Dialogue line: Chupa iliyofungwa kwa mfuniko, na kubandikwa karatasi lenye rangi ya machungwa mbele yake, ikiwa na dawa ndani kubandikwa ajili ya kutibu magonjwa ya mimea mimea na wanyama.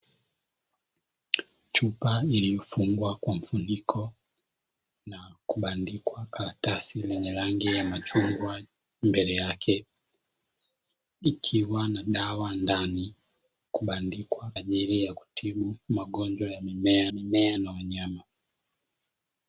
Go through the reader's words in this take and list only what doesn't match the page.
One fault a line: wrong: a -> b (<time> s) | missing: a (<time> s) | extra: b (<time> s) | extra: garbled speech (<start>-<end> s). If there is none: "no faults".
no faults